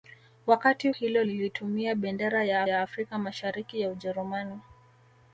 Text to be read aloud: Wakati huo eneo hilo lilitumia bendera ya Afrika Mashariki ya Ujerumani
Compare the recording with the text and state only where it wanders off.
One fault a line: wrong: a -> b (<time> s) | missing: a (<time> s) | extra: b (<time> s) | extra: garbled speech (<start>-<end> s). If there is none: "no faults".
missing: huo eneo (0.9 s)
extra: ya (2.6 s)